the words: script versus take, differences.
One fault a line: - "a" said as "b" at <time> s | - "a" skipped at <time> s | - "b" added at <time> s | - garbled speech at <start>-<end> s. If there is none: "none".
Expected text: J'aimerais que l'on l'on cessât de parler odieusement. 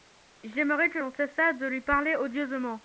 - "l'on" skipped at 1.1 s
- "lui" added at 1.7 s